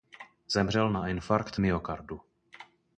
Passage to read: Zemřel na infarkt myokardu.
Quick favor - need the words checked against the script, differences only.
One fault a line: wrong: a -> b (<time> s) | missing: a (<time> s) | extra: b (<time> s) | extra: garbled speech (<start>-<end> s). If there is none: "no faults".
no faults